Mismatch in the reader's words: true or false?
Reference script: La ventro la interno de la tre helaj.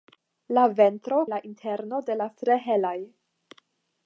false